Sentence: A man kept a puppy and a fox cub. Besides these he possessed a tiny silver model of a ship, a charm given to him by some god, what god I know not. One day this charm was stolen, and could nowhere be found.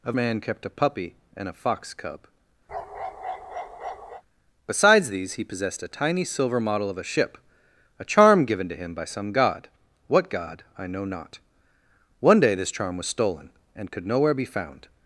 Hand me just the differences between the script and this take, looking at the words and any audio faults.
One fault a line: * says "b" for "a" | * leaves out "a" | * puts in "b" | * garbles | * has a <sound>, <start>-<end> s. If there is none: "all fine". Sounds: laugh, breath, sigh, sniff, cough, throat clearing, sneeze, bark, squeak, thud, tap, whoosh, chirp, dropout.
* has a bark, 2.7-4.2 s